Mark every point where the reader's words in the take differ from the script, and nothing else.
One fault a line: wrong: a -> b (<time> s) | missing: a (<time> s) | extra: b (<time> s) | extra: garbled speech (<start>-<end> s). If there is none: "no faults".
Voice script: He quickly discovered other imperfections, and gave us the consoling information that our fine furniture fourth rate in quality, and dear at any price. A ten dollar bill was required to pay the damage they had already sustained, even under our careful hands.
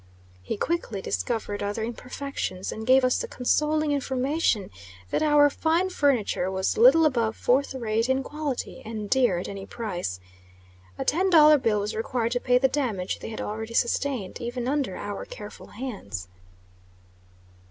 extra: was little above (6.5 s)